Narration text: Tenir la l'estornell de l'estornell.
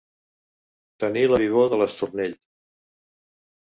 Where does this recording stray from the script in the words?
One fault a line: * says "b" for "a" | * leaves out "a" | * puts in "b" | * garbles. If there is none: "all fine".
* says "vivor" for "l'estornell"